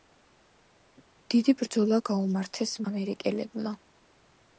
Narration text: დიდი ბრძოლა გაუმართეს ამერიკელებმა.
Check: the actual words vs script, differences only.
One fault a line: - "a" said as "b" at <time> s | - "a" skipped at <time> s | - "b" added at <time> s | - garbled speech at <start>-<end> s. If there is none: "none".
none